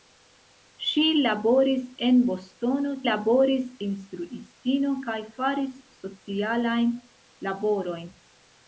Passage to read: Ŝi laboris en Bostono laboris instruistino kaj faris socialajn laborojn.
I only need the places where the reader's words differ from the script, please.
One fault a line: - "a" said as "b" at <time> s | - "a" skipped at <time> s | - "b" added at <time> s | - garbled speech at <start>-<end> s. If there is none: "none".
none